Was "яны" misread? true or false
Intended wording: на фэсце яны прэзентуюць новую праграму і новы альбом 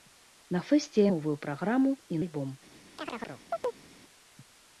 true